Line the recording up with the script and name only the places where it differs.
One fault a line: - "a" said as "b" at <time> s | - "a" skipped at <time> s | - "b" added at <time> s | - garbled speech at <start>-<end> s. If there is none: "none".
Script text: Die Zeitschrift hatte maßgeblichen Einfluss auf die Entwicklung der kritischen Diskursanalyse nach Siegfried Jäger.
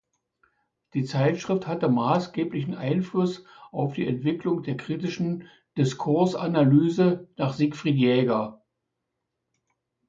none